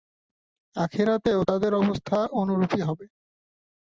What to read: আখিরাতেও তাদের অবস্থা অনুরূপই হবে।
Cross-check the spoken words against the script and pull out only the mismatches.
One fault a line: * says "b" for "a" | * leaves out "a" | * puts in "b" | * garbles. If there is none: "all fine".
all fine